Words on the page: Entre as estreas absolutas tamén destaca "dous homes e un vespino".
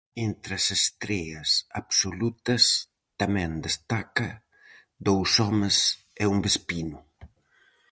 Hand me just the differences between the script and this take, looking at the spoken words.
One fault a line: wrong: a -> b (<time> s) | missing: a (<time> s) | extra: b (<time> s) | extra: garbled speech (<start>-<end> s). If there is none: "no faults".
no faults